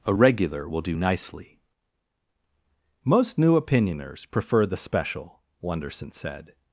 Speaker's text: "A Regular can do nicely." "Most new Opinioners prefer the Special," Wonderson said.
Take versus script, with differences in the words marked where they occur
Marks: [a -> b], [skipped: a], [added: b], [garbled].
"A Regular [can -> will] do nicely." "Most new Opinioners prefer the Special," Wonderson said.